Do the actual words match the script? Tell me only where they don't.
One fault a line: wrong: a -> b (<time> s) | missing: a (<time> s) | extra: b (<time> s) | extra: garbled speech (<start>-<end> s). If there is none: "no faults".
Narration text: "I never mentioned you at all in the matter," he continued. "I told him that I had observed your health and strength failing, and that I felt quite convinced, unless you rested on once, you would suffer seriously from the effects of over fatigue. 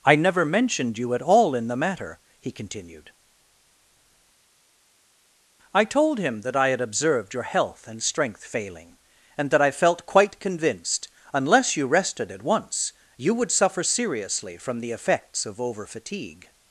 wrong: on -> at (12.3 s)